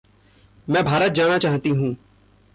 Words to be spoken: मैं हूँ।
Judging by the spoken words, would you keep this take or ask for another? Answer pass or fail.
fail